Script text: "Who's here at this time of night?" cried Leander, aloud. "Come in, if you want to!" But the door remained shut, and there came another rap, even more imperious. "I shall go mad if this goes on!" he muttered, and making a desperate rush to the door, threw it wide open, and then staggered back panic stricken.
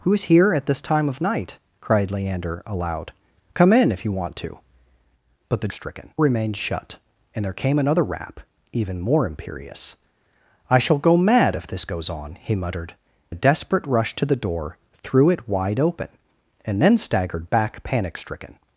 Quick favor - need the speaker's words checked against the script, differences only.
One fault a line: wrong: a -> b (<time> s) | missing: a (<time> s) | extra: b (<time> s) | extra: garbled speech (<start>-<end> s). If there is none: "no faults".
wrong: door -> stricken (5.7 s)
missing: and making (12.9 s)